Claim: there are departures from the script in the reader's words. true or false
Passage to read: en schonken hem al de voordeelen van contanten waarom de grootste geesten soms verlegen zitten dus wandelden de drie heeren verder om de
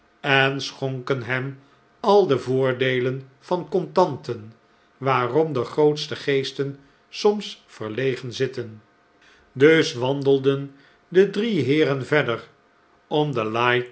false